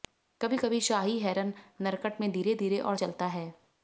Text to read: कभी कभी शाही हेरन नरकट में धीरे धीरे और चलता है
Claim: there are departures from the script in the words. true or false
false